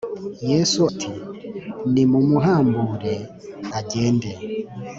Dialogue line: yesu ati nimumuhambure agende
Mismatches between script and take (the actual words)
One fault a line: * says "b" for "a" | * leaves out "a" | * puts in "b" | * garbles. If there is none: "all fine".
all fine